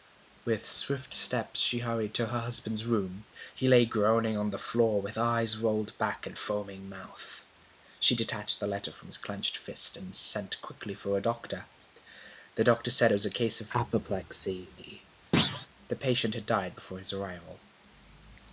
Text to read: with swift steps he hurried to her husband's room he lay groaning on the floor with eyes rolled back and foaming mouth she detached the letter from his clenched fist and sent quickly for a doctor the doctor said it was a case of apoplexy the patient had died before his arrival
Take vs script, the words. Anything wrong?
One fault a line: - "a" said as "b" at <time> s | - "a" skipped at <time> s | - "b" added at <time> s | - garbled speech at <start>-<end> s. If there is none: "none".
- "he" said as "she" at 1.6 s